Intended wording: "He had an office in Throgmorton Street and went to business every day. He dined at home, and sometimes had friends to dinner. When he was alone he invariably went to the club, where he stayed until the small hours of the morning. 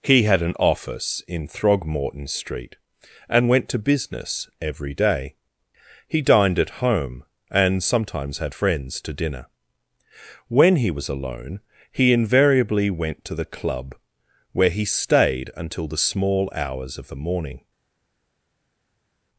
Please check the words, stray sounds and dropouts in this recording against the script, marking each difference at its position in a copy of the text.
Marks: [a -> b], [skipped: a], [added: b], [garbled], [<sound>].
"He had an office in Throgmorton Street and went to business every day. He dined at home, and sometimes had friends to dinner. When he was alone he invariably went to the club, where he stayed until the small hours of the morning.